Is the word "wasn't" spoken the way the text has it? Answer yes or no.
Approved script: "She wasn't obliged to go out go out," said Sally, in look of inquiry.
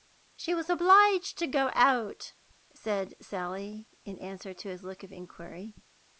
no